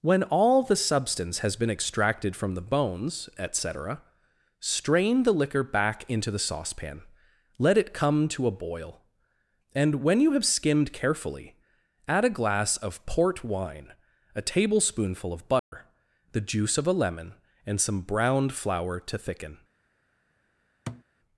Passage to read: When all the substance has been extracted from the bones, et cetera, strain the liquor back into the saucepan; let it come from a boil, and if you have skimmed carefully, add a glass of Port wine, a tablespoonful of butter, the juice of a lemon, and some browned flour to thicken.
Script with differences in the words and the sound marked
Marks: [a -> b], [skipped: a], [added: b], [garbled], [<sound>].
When all the substance has been extracted from the bones, et cetera, strain the liquor back into the saucepan; let it come [from -> to] a boil, and [if -> when] you have skimmed carefully, add a glass of Port wine, a tablespoonful of butter, [dropout] the juice of a lemon, and some browned flour to thicken. [thud]